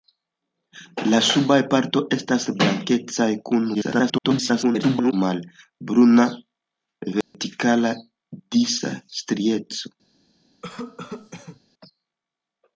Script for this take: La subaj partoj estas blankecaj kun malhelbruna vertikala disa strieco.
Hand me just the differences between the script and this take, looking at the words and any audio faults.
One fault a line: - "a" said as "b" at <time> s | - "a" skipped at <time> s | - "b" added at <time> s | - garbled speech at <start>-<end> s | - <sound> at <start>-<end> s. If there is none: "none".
- garbled speech at 3.7-5.1 s
- dropout at 7.2-7.3 s
- cough at 10.6-11.6 s